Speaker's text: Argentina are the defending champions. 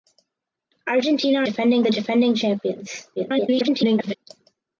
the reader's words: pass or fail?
fail